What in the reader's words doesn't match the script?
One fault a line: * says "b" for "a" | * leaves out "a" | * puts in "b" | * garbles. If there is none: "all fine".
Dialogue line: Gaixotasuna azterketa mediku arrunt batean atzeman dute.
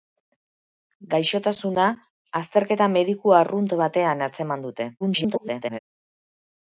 * garbles